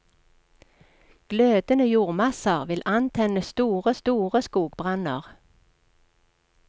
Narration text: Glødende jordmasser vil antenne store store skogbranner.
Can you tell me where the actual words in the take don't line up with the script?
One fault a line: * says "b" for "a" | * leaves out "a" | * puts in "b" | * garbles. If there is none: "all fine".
all fine